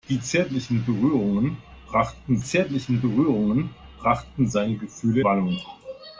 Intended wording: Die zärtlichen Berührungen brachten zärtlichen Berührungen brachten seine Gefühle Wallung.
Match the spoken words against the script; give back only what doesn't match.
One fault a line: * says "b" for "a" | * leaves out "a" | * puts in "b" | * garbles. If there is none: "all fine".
all fine